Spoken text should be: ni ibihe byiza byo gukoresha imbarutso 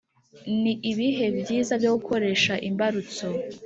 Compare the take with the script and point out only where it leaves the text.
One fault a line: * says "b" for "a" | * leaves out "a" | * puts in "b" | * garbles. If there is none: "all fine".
all fine